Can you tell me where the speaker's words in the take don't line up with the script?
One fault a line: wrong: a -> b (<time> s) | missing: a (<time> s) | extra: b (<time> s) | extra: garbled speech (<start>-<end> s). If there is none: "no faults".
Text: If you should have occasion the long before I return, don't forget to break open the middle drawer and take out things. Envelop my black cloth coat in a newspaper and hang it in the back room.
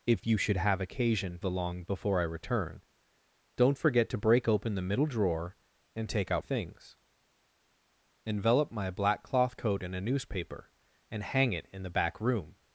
no faults